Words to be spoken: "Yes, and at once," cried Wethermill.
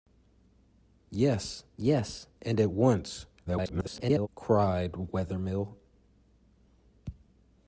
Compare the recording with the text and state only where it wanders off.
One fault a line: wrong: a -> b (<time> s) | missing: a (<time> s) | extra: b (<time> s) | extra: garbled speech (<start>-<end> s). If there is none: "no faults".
extra: yes (1.8 s)
extra: garbled speech (3.5-4.3 s)